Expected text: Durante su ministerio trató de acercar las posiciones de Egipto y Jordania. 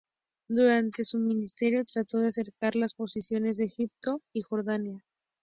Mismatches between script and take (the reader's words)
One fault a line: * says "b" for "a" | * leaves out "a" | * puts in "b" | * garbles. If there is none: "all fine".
all fine